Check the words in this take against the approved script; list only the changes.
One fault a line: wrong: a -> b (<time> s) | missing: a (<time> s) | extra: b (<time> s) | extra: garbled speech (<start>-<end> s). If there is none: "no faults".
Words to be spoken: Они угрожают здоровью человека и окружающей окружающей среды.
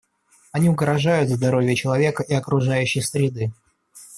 missing: окружающей (3.0 s)